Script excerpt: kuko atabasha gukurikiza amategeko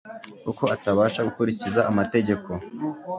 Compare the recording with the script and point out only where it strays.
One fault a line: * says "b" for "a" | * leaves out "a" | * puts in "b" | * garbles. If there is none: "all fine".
all fine